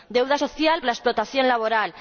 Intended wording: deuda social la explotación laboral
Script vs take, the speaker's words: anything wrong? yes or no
no